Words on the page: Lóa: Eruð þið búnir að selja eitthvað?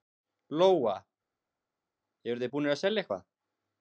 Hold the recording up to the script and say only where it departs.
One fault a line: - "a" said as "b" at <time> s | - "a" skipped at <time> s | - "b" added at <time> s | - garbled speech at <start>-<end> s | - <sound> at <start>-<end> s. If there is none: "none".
none